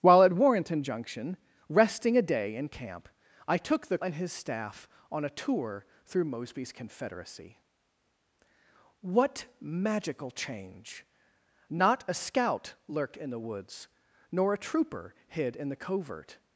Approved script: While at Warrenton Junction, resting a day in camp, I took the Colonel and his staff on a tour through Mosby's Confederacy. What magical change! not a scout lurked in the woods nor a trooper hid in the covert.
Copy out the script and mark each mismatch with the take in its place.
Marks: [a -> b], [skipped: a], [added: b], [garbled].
While at Warrenton Junction, resting a day in camp, I took the [skipped: Colonel] and his staff on a tour through Mosby's Confederacy. What magical change! not a scout lurked in the woods nor a trooper hid in the covert.